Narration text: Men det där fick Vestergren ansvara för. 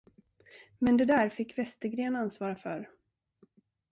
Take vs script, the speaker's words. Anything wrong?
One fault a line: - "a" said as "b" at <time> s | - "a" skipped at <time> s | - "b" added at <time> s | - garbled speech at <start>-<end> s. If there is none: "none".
none